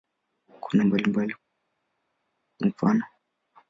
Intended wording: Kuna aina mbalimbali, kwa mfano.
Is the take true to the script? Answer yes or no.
no